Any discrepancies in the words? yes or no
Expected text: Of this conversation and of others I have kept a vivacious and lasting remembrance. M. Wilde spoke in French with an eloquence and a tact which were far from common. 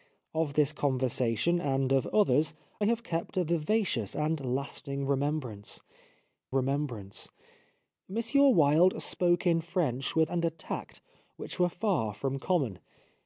yes